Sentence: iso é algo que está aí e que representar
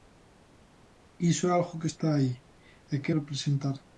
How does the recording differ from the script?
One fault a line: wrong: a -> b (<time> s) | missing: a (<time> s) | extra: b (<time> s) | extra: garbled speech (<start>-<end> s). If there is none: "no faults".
no faults